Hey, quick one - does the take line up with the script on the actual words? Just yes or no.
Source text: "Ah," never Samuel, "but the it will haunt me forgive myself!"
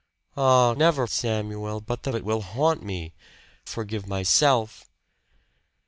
yes